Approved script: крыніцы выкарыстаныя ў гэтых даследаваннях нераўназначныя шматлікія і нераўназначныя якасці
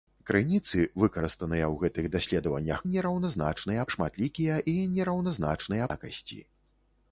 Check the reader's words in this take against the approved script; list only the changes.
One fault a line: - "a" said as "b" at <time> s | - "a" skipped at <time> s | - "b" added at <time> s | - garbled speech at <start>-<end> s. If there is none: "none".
none